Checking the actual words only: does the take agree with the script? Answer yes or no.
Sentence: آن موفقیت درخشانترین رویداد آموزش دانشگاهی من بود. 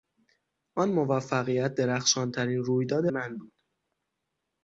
no